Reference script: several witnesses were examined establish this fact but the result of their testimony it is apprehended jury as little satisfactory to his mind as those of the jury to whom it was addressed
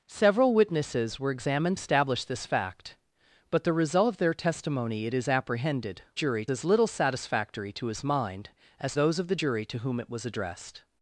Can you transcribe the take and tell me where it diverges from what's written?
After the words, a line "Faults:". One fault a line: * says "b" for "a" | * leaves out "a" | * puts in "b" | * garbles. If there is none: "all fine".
several witnesses were examined establish this fact but the result of their testimony it is apprehended jury as little satisfactory to his mind as those of the jury to whom it was addressed
Faults:
all fine